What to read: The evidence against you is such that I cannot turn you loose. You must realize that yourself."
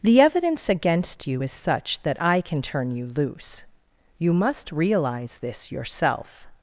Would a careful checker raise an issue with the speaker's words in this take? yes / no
yes